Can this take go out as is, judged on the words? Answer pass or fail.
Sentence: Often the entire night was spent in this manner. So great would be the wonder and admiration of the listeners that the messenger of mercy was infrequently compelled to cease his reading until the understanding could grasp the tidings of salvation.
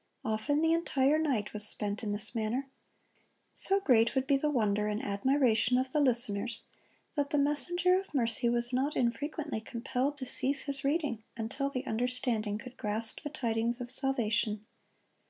fail